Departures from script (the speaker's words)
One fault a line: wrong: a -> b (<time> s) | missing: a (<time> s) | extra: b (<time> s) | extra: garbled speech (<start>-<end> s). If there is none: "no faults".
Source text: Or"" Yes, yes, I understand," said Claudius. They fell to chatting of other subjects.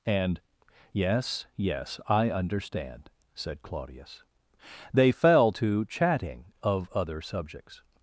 wrong: Or -> And (0.0 s)